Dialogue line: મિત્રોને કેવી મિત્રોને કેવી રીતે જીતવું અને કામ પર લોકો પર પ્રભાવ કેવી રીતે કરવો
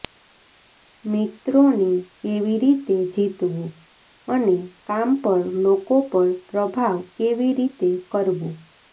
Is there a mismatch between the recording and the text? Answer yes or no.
yes